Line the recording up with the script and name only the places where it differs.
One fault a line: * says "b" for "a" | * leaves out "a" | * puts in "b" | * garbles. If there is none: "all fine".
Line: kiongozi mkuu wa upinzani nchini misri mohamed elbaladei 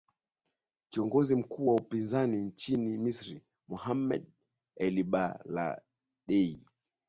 all fine